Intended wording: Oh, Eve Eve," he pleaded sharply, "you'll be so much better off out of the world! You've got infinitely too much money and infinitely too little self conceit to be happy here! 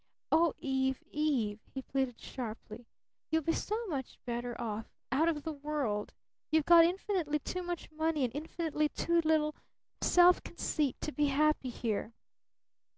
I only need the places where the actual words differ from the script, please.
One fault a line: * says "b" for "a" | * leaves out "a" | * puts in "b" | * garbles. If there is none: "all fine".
all fine